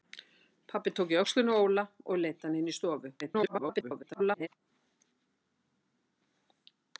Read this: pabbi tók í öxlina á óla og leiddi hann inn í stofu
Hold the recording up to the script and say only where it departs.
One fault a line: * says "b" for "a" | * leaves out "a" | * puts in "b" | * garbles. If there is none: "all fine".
* garbles